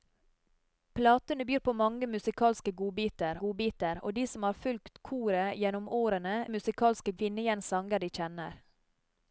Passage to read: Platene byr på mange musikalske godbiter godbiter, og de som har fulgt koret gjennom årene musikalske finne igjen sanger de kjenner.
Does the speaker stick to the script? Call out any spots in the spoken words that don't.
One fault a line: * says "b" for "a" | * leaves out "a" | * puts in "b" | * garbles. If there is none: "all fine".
all fine